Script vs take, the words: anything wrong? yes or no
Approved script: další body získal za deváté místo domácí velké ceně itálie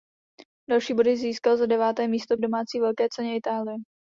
no